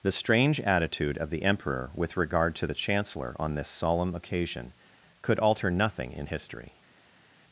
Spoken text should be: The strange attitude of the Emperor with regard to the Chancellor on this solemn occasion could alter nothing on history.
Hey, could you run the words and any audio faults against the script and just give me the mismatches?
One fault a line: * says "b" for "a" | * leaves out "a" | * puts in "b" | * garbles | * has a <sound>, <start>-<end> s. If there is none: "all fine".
* says "in" for "on"